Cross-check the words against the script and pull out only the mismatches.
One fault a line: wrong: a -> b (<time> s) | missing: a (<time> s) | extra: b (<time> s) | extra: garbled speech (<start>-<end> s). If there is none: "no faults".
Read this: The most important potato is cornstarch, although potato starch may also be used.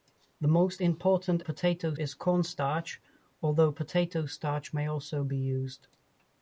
no faults